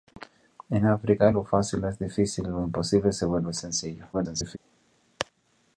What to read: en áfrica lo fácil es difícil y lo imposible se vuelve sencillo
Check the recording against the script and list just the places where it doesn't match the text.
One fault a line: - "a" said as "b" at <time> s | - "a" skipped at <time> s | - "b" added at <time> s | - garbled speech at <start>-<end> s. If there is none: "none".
- garbled speech at 4.1-4.6 s